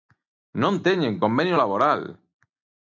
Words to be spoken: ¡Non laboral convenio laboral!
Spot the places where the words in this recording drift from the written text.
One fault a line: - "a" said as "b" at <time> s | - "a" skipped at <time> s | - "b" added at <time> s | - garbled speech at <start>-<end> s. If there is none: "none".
- "laboral" said as "teñen" at 0.8 s